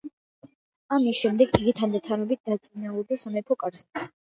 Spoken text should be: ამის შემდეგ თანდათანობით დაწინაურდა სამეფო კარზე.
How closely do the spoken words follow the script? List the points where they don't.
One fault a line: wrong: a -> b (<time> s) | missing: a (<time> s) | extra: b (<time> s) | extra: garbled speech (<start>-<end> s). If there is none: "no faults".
extra: იგი (1.6 s)